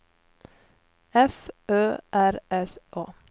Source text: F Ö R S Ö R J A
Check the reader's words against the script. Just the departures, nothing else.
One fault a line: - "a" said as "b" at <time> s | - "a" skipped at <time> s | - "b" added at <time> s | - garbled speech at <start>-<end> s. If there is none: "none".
- "Ö R J" skipped at 2.8 s